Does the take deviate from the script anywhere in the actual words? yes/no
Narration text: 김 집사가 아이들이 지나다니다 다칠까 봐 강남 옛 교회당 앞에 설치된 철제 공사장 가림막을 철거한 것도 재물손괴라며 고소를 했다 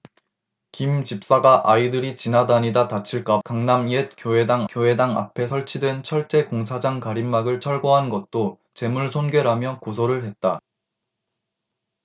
yes